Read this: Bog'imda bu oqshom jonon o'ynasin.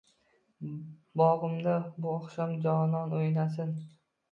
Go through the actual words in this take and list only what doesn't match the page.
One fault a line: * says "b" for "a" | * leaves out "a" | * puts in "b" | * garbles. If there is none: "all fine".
all fine